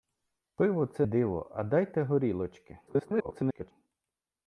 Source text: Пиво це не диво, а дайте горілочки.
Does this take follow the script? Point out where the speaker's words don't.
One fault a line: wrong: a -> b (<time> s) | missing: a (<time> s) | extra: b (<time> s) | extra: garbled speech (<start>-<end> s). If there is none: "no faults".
missing: не (1.1 s)
extra: garbled speech (2.9-3.7 s)